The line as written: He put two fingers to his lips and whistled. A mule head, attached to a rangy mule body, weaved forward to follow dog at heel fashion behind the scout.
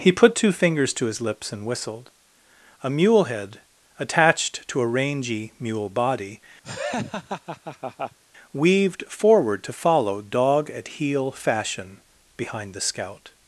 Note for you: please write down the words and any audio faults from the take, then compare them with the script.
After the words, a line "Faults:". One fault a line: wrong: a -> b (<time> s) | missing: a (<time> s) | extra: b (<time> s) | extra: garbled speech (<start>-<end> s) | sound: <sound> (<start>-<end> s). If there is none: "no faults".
He put two fingers to his lips and whistled. A mule head, attached to a rangy mule body, weaved forward to follow dog at heel fashion behind the scout.
Faults:
sound: laugh (6.6-8.2 s)